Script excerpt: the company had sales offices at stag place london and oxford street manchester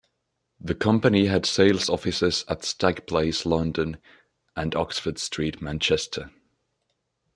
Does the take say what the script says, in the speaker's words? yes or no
yes